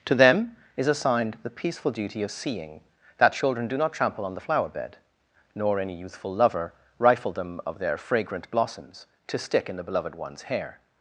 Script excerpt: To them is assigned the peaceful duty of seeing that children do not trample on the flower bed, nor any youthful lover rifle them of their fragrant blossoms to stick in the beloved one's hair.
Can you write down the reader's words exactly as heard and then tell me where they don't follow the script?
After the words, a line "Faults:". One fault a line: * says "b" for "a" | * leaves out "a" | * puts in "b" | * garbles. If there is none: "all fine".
To them is assigned the peaceful duty of seeing that children do not trample on the flower bed, nor any youthful lover rifle them of their fragrant blossoms to stick in the beloved one's hair.
Faults:
all fine